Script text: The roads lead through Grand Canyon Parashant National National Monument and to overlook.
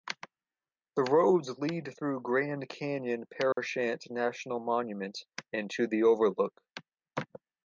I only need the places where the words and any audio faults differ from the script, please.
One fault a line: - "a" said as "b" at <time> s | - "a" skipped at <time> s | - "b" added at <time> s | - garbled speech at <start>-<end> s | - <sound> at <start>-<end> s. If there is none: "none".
- dropout at 3.5-3.6 s
- "National" skipped at 4.6 s
- "the" added at 5.9 s